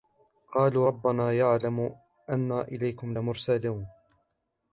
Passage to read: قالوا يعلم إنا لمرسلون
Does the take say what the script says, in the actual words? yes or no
no